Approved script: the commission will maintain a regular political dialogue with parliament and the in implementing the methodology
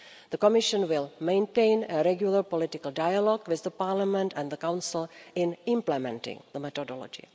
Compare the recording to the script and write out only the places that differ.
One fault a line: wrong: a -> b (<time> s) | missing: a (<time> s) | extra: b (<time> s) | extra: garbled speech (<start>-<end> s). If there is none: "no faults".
extra: council (4.6 s)